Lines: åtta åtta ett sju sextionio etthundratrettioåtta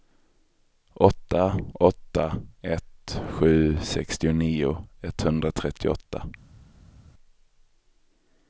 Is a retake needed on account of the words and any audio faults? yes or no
no